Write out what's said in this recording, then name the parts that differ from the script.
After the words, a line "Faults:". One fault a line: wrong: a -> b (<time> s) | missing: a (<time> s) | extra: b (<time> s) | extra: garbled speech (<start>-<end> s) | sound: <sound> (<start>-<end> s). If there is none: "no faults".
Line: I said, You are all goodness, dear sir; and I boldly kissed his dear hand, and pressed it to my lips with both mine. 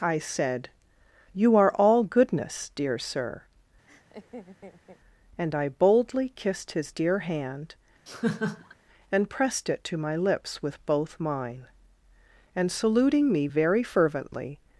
I said, You are all goodness, dear sir; and I boldly kissed his dear hand, and pressed it to my lips with both mine. And saluting me very fervently
Faults:
sound: laugh (3.9-5.0 s)
sound: laugh (8.1-8.7 s)
extra: And saluting me very fervently (12.5 s)